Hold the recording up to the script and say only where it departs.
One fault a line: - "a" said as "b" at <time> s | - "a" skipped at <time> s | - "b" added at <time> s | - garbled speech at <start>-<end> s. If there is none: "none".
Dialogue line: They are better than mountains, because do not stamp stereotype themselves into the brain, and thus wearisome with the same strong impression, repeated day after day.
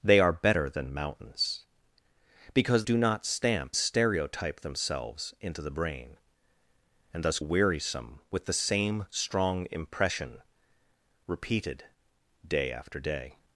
none